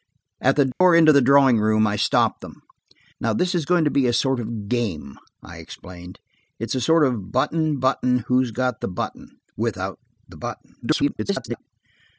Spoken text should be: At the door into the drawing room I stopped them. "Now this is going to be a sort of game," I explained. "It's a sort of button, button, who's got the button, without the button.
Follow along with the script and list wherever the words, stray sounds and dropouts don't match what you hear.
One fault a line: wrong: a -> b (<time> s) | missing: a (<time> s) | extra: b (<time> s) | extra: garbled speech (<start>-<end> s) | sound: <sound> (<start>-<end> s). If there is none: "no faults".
sound: dropout (0.7-0.8 s)
extra: garbled speech (10.8-11.6 s)